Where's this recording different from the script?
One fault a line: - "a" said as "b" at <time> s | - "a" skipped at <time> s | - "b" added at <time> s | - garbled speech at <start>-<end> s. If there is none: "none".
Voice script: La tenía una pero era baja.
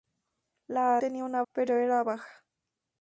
none